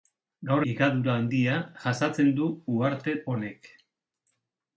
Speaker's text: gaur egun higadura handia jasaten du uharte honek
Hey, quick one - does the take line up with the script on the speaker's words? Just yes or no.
no